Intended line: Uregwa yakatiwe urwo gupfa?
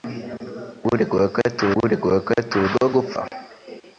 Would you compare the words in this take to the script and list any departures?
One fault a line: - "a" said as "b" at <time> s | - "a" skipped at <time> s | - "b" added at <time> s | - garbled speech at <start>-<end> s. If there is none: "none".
- "uregwa yakatiwe" added at 1.8 s